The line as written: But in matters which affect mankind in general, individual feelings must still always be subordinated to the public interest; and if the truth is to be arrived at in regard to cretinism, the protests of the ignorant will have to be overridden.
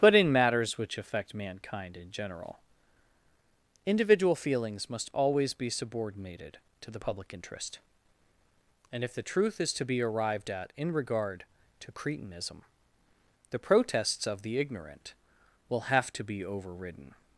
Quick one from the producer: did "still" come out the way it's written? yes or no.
no